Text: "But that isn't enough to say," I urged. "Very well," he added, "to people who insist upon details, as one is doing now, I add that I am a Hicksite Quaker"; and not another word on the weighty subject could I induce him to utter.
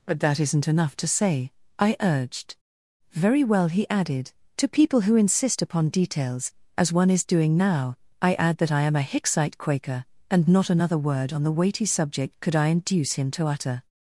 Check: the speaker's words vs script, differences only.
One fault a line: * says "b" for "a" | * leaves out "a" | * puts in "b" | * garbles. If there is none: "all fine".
all fine